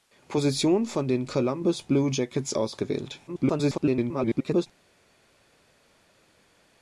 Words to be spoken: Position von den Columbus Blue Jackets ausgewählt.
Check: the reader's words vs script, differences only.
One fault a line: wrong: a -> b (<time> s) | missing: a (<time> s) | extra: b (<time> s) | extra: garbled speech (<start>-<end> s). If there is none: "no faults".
extra: garbled speech (3.3-4.7 s)